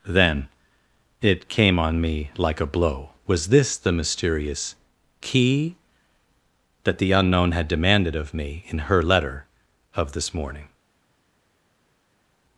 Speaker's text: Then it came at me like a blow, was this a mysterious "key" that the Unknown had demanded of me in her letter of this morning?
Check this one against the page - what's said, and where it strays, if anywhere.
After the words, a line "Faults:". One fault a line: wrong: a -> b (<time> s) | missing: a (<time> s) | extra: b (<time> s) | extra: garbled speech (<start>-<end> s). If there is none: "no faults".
Then it came on me like a blow, was this the mysterious "key" that the Unknown had demanded of me in her letter of this morning?
Faults:
wrong: at -> on (1.8 s)
wrong: a -> the (3.8 s)